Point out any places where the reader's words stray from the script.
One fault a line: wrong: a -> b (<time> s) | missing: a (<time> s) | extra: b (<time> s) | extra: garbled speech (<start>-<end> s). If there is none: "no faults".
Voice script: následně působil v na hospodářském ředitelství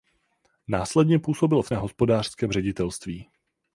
no faults